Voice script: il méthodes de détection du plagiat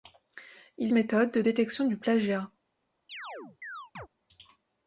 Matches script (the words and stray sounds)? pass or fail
fail